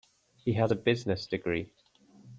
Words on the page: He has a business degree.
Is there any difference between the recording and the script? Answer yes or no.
no